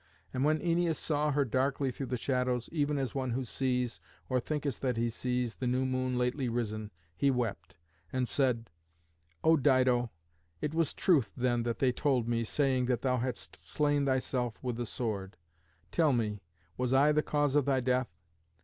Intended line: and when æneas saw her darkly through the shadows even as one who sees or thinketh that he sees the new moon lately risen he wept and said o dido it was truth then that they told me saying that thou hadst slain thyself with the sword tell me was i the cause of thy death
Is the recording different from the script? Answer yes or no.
no